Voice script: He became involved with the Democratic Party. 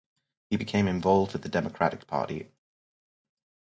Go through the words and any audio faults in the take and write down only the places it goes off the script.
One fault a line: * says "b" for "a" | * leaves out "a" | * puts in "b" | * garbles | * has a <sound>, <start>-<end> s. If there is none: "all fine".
all fine